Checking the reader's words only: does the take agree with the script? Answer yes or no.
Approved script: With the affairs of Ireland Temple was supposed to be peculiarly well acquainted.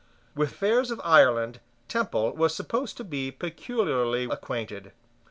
no